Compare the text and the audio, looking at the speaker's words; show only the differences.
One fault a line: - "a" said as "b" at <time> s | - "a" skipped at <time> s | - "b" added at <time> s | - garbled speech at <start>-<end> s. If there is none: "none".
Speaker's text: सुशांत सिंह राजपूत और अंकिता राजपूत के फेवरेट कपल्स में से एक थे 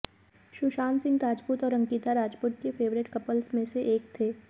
none